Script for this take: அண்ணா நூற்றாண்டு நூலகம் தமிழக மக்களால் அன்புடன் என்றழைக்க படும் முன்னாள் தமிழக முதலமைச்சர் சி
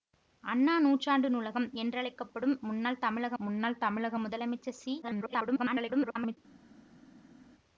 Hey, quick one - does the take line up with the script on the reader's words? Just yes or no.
no